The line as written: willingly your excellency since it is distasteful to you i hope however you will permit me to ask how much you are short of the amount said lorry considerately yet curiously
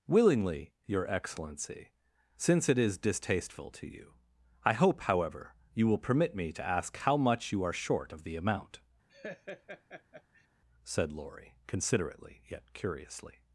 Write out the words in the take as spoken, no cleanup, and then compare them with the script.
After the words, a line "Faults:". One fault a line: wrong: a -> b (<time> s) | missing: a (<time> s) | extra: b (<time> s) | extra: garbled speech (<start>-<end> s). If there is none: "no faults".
willingly your excellency since it is distasteful to you i hope however you will permit me to ask how much you are short of the amount said lorry considerately yet curiously
Faults:
no faults